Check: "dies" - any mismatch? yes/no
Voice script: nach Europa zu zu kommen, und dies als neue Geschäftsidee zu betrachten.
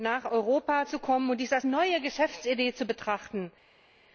no